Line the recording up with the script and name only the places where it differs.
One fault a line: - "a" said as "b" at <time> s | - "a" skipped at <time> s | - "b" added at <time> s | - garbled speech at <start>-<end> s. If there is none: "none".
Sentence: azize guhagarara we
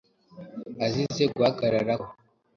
none